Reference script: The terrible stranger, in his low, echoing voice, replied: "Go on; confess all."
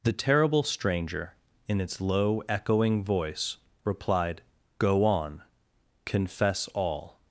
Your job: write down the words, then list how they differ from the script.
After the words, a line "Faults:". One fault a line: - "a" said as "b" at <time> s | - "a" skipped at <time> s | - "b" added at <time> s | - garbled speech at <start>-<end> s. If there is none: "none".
The terrible stranger, in its low, echoing voice, replied: "Go on; confess all."
Faults:
- "his" said as "its" at 1.8 s